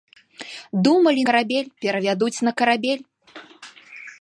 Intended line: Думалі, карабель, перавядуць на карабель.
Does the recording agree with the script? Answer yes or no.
yes